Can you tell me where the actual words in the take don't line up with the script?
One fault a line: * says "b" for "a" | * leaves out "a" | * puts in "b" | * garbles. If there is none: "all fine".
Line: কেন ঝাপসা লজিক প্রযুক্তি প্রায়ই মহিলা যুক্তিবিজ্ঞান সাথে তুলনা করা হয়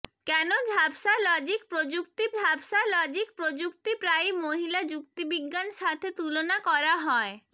* puts in "ঝাপসা লজিক প্রযুক্তি"